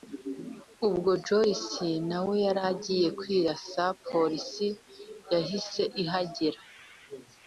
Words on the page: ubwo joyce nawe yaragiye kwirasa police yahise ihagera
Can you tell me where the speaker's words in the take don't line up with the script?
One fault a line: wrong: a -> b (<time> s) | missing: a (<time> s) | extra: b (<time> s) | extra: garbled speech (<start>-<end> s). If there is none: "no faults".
no faults